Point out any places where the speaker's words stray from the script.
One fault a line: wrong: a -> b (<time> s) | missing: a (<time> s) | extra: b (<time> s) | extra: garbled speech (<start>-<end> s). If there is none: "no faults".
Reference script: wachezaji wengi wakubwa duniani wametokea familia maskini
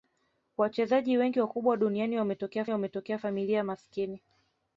extra: wametokea (2.7 s)